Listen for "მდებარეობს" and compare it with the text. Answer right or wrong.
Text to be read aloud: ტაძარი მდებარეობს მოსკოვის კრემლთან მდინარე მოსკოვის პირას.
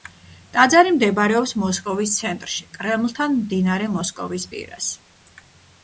right